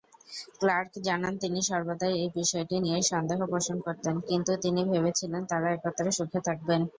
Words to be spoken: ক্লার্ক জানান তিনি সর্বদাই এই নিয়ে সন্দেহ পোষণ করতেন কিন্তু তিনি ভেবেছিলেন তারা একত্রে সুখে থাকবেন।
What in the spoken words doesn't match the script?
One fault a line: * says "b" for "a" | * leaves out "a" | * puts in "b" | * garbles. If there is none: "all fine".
* puts in "বিষয়টি"